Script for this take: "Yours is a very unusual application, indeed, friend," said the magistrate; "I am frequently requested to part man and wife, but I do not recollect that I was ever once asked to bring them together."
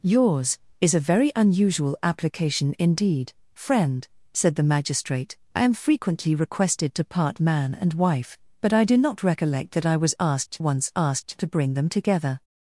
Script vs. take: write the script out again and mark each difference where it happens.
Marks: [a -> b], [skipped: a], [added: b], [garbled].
"Yours is a very unusual application, indeed, friend," said the magistrate; "I am frequently requested to part man and wife, but I do not recollect that I was [ever -> asked] once asked to bring them together."